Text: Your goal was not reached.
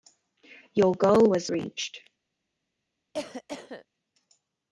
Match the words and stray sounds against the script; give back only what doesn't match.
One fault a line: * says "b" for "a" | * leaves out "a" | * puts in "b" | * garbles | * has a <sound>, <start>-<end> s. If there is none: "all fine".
* leaves out "not"
* has a cough, 3.1-3.9 s